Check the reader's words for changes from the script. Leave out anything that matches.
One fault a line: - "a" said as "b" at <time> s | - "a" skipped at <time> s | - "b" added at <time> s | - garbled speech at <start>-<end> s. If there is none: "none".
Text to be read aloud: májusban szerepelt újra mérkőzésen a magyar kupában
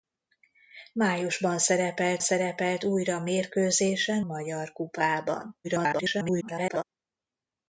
- "szerepelt" added at 2.2 s
- "a" skipped at 4.2 s
- garbled speech at 5.6-6.8 s